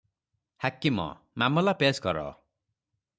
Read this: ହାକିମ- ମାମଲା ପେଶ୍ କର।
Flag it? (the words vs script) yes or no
no